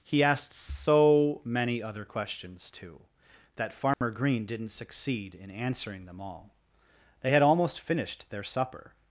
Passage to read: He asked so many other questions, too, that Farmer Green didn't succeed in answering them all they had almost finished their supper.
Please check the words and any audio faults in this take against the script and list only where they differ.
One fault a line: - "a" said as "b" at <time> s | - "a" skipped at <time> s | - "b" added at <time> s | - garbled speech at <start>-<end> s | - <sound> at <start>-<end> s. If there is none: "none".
- dropout at 3.9-4.0 s